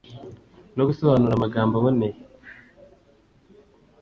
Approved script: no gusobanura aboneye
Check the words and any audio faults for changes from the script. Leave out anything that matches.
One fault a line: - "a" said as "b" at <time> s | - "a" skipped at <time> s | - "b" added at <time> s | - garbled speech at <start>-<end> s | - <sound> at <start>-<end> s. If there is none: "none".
- "amagambo" added at 1.4 s